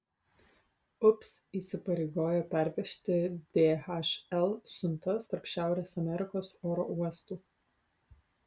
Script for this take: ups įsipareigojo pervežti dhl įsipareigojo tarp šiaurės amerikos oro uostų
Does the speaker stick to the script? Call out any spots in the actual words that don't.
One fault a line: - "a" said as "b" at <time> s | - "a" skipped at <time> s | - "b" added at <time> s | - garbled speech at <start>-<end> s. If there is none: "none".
- "įsipareigojo" said as "siuntas" at 4.8 s